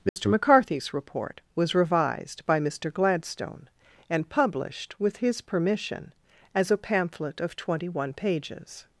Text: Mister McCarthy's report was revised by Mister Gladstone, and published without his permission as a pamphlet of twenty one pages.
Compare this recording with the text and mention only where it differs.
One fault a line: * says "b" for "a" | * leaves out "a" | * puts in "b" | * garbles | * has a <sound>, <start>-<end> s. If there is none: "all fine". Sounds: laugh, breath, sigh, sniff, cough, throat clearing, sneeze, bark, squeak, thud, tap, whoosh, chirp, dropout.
* has a dropout, 0.1-0.2 s
* says "with" for "without"